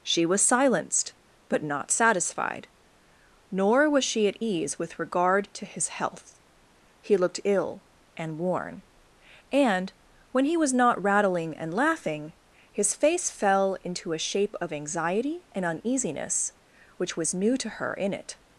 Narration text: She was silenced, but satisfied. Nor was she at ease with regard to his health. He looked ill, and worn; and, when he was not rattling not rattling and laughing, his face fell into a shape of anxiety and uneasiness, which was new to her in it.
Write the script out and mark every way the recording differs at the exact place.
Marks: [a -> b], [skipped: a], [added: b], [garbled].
She was silenced, but [added: not] satisfied. Nor was she at ease with regard to his health. He looked ill, and worn; and, when he was not rattling [skipped: not rattling] and laughing, his face fell into a shape of anxiety and uneasiness, which was new to her in it.